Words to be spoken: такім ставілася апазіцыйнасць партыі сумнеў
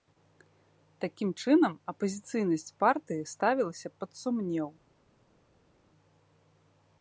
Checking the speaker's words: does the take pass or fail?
fail